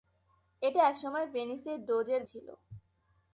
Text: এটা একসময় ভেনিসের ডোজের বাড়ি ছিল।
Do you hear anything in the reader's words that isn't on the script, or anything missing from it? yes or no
yes